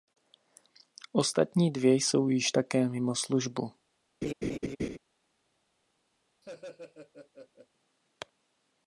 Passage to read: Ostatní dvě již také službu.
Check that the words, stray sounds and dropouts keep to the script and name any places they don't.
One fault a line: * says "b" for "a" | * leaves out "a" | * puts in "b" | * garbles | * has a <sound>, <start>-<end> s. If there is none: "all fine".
* puts in "jsou"
* puts in "mimo"
* has a laugh, 4.2-5.0 s
* has a laugh, 6.4-7.7 s